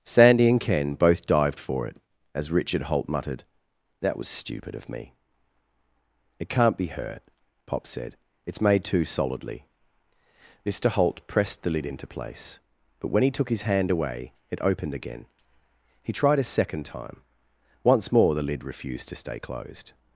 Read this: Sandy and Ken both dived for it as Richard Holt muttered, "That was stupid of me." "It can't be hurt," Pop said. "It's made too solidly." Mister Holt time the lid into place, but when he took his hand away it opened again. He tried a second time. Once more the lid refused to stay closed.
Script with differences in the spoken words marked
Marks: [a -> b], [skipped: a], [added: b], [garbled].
Sandy and Ken both dived for it as Richard Holt muttered, "That was stupid of me." "It can't be hurt," Pop said. "It's made too solidly." Mister Holt [time -> pressed] the lid into place, but when he took his hand away it opened again. He tried a second time. Once more the lid refused to stay closed.